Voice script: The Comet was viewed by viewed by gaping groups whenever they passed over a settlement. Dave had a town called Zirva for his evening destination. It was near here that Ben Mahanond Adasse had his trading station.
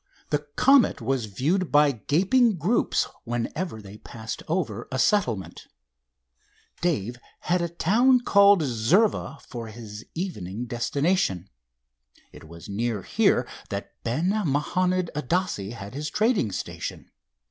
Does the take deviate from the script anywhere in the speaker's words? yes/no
yes